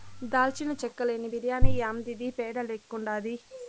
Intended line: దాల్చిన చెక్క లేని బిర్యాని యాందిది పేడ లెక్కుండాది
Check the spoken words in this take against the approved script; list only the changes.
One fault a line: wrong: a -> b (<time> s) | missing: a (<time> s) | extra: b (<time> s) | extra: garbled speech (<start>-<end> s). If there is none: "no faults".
no faults